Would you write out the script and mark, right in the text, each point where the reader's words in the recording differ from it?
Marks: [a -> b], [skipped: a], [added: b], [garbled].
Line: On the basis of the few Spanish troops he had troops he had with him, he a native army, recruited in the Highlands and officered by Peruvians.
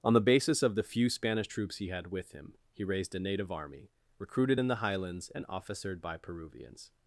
On the basis of the few Spanish troops he had [skipped: troops he had] with him, he [added: raised] a native army, recruited in the Highlands and officered by Peruvians.